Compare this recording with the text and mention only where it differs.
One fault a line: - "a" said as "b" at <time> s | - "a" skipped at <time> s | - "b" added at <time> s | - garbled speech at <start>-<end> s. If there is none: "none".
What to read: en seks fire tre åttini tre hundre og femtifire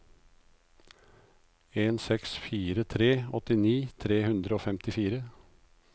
none